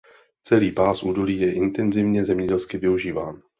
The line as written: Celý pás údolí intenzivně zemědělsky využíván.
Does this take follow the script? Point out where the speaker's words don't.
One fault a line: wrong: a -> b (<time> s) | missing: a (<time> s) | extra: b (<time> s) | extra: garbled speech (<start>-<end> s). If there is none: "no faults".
extra: je (1.4 s)